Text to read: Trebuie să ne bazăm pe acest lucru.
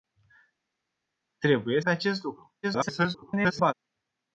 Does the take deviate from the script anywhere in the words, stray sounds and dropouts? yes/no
yes